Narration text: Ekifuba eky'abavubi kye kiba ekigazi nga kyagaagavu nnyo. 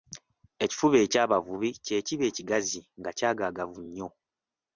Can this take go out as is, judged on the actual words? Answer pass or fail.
pass